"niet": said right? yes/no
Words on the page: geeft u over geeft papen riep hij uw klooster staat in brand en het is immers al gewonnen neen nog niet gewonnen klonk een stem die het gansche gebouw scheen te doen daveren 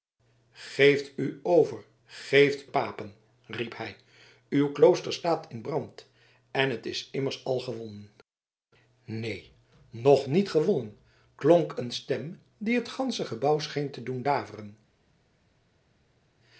yes